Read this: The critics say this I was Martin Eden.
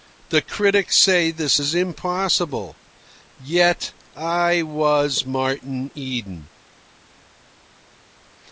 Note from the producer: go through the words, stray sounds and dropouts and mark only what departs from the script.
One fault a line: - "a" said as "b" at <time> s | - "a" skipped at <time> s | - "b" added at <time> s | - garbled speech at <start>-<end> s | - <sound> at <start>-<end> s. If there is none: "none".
- "is impossible Yet" added at 1.6 s